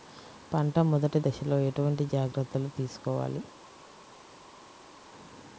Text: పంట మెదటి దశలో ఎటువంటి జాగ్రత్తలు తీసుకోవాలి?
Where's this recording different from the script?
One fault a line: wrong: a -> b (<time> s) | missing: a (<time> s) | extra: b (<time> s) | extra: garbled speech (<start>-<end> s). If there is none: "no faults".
no faults